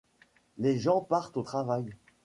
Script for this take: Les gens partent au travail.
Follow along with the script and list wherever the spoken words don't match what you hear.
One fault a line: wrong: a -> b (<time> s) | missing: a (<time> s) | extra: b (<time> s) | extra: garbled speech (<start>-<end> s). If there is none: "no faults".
no faults